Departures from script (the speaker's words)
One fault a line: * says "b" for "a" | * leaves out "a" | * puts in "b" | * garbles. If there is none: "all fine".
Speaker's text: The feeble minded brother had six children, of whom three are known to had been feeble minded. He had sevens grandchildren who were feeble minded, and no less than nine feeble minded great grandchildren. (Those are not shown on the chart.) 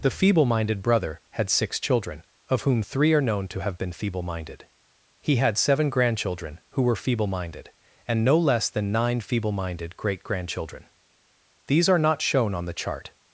* says "have" for "had"
* says "seven" for "sevens"
* says "These" for "Those"